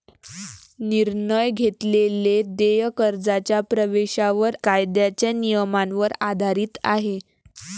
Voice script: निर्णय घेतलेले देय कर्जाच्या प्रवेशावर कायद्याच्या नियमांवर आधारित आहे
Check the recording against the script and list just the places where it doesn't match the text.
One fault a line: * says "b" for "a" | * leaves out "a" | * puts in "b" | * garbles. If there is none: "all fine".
all fine